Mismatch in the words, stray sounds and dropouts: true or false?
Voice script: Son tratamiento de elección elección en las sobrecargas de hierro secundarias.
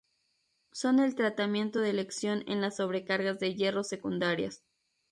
true